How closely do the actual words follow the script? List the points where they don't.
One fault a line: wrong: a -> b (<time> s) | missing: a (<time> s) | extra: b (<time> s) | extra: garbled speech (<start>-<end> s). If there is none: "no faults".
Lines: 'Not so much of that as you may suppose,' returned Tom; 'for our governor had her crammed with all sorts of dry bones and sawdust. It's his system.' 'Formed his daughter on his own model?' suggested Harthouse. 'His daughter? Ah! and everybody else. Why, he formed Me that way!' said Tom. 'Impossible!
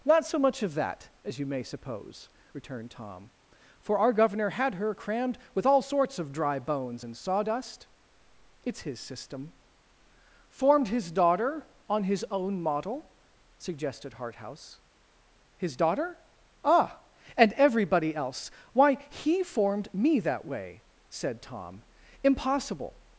no faults